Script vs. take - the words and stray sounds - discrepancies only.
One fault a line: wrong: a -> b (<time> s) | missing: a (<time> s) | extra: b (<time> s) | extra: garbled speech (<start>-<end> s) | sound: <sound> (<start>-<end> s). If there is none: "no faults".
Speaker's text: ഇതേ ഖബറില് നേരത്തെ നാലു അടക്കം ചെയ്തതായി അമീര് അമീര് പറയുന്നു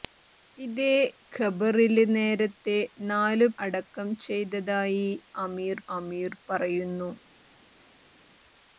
no faults